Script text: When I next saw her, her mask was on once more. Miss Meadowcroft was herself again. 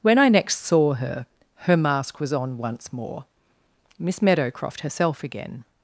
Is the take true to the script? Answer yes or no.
no